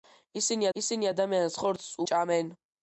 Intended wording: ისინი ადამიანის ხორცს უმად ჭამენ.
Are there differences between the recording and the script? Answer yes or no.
yes